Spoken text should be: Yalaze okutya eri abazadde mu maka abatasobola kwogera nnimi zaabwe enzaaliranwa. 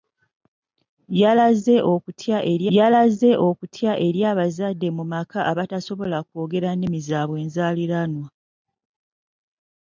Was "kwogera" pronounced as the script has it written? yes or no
yes